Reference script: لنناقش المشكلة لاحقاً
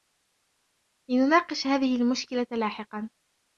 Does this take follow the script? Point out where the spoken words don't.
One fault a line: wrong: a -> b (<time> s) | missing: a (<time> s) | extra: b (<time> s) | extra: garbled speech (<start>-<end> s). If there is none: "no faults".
extra: هذه (1.7 s)